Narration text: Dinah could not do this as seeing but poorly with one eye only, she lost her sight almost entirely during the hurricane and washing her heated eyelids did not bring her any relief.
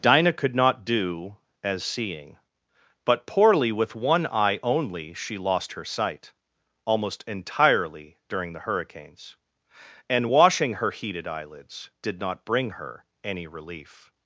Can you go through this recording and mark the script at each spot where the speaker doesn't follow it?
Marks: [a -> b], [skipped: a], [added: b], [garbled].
Dinah could not do [skipped: this] as seeing but poorly with one eye only, she lost her sight almost entirely during the [hurricane -> hurricanes] and washing her heated eyelids did not bring her any relief.